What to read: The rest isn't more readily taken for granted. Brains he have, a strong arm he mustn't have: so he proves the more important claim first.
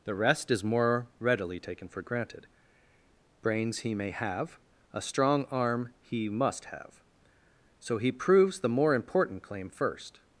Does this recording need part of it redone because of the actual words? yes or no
yes